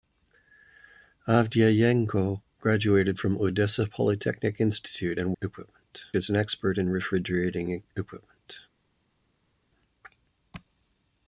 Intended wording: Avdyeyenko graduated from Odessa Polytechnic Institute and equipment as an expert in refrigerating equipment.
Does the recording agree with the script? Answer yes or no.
yes